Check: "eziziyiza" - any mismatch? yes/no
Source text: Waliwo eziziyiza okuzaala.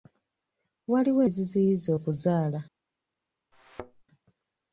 no